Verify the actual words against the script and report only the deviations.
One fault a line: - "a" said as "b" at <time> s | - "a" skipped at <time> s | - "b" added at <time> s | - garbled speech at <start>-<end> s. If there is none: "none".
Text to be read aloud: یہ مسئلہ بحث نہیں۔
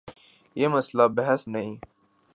none